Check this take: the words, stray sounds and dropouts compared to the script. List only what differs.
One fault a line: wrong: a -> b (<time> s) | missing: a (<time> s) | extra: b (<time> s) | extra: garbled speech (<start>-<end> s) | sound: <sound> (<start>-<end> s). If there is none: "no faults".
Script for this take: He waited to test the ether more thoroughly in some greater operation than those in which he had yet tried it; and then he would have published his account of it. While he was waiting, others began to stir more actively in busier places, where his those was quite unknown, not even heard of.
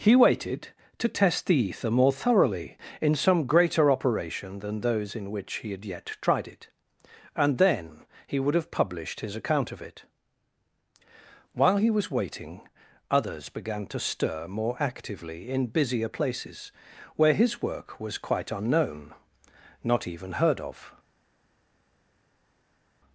wrong: those -> work (17.6 s)